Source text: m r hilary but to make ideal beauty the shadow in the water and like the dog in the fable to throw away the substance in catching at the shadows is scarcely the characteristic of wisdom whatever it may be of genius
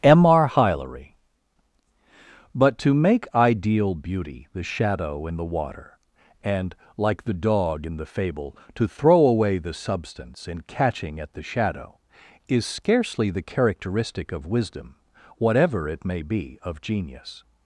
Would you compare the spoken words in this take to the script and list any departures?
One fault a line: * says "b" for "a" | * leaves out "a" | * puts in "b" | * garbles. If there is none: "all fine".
* says "shadow" for "shadows"